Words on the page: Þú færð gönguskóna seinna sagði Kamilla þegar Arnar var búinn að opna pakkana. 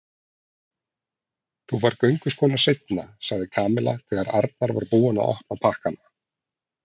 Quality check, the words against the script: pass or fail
pass